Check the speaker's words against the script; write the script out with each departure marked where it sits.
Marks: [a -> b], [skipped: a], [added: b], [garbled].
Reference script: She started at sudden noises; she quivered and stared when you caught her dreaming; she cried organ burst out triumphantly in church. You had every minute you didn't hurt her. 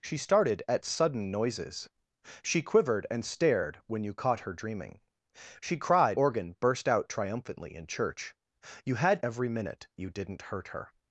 She started at sudden noises; she quivered and stared when you caught her dreaming; she cried organ burst out triumphantly in church. You had every minute you didn't hurt her.